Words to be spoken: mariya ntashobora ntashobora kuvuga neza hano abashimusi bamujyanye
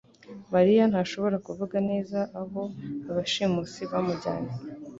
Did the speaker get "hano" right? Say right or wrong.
wrong